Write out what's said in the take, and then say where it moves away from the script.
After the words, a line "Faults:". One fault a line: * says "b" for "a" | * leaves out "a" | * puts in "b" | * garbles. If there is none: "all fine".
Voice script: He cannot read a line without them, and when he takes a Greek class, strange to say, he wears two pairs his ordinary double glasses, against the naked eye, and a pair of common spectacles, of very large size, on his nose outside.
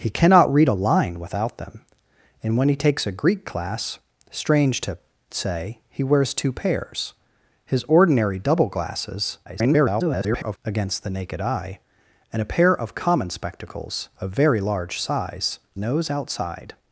He cannot read a line without them, and when he takes a Greek class, strange to say, he wears two pairs his ordinary double glasses, [garbled] against the naked eye, and a pair of common spectacles, of very large size, nose outside.
Faults:
* garbles
* leaves out "on his"